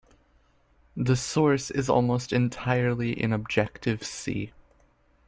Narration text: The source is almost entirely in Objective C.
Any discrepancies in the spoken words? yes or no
no